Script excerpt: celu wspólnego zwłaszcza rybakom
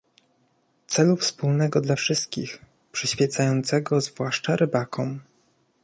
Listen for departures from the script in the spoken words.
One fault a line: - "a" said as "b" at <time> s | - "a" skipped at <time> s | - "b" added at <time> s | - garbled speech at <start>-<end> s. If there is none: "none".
- "dla wszystkich przyświecającego" added at 1.8 s